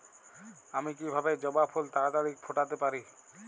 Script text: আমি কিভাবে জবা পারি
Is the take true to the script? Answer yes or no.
no